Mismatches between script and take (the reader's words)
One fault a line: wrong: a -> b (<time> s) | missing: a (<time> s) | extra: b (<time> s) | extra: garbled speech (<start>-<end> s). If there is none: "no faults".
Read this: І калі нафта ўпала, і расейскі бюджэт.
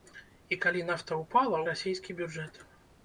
no faults